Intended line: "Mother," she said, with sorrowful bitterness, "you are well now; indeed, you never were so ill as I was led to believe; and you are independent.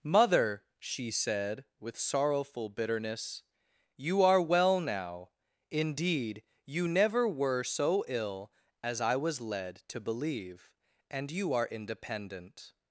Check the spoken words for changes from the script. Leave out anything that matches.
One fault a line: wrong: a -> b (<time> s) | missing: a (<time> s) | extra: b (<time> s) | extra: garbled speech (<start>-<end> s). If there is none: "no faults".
no faults